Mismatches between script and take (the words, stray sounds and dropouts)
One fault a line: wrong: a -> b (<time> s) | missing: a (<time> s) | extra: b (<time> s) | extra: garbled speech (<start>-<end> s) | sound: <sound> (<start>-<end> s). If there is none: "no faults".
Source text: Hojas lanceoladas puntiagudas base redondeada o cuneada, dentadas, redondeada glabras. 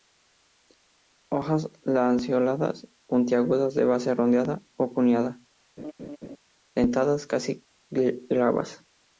extra: de (3.8 s)
sound: laugh (5.8-6.4 s)
wrong: redondeada -> casi (7.2 s)